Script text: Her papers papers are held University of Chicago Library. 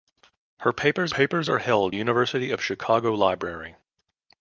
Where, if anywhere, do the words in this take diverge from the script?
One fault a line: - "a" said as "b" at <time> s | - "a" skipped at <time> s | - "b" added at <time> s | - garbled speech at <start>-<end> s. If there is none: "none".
none